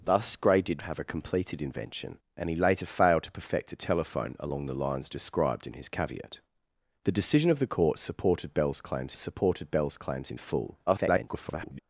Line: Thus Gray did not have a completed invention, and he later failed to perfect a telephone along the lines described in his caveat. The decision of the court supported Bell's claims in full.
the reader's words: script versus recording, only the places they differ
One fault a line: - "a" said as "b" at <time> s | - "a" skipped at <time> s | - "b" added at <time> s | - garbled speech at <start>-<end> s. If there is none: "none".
- "not" skipped at 0.8 s
- "supported Bell's claims" added at 9.2 s
- garbled speech at 10.9-11.8 s